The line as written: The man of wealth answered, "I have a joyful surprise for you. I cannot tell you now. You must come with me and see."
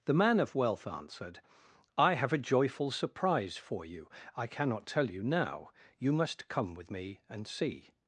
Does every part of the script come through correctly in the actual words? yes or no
yes